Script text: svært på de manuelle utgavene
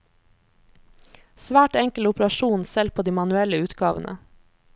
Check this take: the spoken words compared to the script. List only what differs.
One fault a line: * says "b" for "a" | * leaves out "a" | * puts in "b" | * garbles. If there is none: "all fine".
* puts in "enkel operasjon selv"